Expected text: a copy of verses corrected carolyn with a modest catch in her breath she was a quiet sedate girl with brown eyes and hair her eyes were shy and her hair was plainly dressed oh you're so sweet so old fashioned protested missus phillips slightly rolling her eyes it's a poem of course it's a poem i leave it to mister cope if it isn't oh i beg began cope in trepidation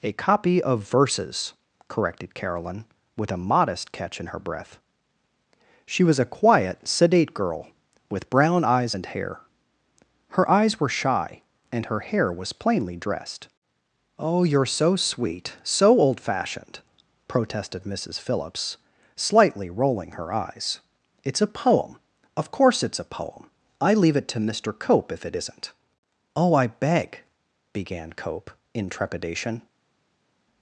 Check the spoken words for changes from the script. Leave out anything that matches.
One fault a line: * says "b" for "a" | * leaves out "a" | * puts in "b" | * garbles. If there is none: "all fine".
all fine